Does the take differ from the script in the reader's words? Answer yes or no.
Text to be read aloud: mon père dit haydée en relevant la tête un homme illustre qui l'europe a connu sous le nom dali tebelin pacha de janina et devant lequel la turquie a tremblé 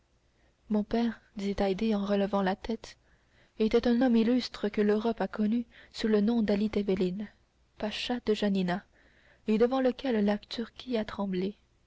yes